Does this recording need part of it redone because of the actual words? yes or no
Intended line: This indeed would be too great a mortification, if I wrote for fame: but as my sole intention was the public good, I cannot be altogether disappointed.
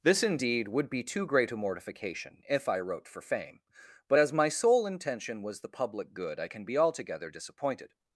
yes